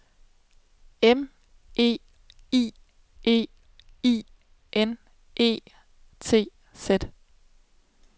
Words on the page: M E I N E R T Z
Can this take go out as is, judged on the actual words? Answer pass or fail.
fail